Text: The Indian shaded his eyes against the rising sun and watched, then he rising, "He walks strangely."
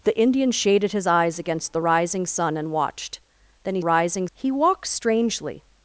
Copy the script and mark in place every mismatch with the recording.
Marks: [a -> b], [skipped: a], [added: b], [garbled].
The Indian shaded his eyes against the rising sun and watched, then he rising, "He walks strangely."